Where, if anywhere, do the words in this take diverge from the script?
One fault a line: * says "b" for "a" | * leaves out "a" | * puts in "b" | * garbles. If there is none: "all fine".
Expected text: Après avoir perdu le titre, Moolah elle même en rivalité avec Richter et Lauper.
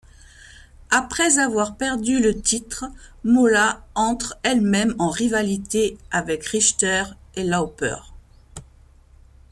* puts in "entre"